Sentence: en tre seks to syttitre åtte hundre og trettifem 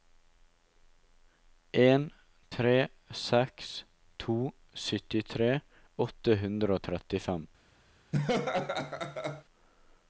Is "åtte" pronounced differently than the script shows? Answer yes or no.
no